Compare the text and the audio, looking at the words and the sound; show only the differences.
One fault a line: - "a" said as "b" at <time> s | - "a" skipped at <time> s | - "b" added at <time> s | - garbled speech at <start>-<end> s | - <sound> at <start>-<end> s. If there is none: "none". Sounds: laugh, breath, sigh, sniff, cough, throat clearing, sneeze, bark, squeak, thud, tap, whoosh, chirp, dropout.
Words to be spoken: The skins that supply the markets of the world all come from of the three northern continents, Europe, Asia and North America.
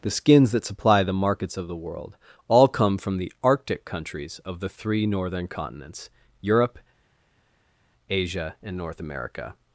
- "the arctic countries" added at 3.2 s